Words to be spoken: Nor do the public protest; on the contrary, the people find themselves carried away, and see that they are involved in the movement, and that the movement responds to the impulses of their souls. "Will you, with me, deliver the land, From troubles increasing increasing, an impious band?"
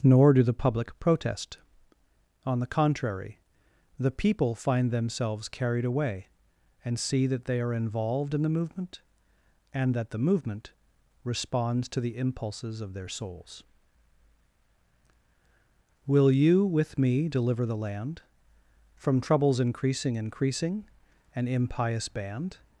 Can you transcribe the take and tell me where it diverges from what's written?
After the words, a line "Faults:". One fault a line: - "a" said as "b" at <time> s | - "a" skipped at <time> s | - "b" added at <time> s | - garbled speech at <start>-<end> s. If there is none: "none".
Nor do the public protest; on the contrary, the people find themselves carried away, and see that they are involved in the movement, and that the movement responds to the impulses of their souls. "Will you, with me, deliver the land, From troubles increasing increasing, an impious band?"
Faults:
none